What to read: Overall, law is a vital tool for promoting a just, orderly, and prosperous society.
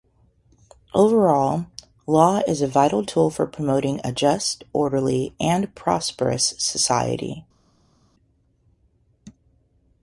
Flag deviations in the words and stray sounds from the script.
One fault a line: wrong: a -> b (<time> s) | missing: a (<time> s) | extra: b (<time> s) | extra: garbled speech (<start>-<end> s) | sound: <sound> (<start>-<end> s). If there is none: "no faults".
no faults